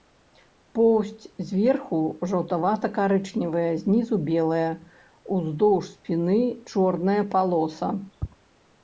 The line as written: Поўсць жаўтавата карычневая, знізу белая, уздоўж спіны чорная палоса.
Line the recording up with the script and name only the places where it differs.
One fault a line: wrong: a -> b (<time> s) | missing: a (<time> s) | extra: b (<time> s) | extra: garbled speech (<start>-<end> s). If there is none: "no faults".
extra: зверху (1.5 s)